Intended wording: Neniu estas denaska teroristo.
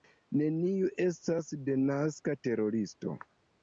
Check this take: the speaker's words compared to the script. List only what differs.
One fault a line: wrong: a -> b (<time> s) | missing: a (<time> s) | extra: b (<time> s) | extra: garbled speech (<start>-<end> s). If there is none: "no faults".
no faults